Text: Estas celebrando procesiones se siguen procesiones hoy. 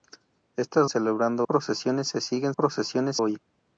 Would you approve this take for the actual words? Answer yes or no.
yes